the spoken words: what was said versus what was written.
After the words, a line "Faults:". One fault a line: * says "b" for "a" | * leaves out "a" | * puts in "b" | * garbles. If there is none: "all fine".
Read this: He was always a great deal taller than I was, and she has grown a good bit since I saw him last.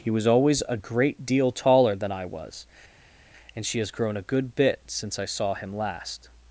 He was always a great deal taller than I was, and she has grown a good bit since I saw him last.
Faults:
all fine